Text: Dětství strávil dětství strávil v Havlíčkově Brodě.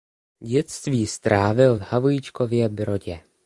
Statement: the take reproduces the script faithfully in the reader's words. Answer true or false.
false